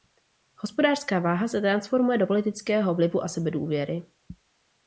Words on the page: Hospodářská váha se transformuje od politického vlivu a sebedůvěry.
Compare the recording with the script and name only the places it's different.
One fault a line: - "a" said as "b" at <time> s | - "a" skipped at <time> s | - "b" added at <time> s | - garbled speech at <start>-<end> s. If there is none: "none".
- "od" said as "do" at 2.2 s